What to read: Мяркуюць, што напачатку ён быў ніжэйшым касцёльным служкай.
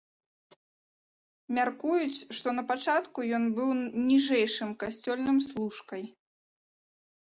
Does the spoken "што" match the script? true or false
true